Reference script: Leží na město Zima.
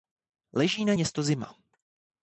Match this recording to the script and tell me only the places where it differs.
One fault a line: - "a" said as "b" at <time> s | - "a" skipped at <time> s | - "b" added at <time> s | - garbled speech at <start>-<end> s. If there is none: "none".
none